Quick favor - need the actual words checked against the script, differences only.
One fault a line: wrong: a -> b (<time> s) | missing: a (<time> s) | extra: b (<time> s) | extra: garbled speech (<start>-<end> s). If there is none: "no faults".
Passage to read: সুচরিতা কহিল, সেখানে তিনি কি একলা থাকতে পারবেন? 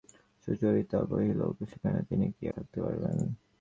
missing: একলা (2.4 s)